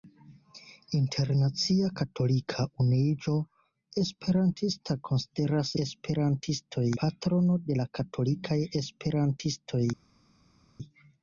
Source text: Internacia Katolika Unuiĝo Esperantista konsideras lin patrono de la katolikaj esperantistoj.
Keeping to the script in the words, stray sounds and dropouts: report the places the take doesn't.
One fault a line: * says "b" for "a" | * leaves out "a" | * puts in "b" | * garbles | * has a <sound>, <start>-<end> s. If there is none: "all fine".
* says "esperantistoj" for "lin"